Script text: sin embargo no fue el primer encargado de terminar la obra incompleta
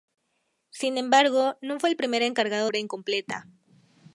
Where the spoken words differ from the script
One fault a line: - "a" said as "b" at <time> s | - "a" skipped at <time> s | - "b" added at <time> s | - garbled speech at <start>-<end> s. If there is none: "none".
- "de terminar la" skipped at 2.7 s